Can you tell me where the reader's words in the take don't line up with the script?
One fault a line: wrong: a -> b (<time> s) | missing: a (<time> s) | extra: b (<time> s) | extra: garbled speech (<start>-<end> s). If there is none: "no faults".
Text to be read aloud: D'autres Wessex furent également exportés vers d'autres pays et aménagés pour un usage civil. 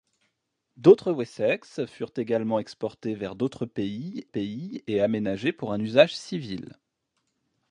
extra: pays (4.3 s)